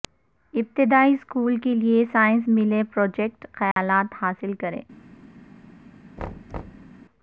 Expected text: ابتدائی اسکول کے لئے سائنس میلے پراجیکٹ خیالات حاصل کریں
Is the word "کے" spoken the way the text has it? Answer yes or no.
yes